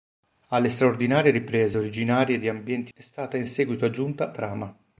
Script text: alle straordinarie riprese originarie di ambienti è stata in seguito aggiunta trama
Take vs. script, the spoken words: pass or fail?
pass